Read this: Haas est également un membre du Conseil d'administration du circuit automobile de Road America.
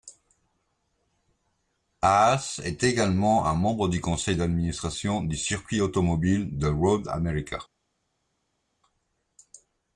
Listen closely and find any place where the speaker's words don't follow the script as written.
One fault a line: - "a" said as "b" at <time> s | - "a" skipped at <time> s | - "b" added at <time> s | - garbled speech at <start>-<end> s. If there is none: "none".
none